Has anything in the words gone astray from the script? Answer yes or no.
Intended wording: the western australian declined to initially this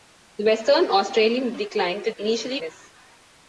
no